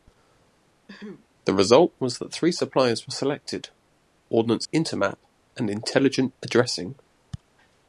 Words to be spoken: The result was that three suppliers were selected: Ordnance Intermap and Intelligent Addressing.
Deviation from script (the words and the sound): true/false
true